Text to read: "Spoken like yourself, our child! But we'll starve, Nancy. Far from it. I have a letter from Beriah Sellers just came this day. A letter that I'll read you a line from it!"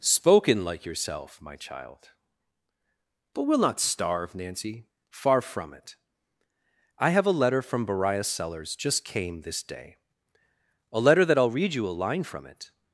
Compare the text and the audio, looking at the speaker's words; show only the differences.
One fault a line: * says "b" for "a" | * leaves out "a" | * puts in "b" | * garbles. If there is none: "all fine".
* says "my" for "our"
* puts in "not"